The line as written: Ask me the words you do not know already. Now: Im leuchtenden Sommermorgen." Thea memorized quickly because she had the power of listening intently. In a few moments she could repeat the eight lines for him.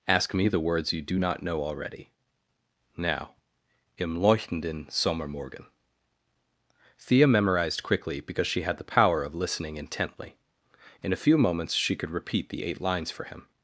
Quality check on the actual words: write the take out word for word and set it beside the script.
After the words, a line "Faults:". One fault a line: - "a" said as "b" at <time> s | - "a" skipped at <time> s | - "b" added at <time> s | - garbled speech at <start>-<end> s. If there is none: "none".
Ask me the words you do not know already. Now: Im leuchtenden Sommermorgen." Thea memorized quickly because she had the power of listening intently. In a few moments she could repeat the eight lines for him.
Faults:
none